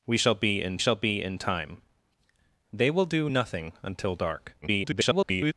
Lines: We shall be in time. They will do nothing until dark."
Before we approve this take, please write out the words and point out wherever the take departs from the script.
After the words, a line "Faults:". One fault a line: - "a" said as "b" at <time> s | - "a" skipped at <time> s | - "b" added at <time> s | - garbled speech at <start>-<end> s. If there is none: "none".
We shall be in shall be in time. They will do nothing until dark." [garbled]
Faults:
- "shall be in" added at 0.8 s
- garbled speech at 4.6-5.5 s